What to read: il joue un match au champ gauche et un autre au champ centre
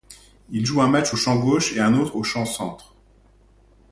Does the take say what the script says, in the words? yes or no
yes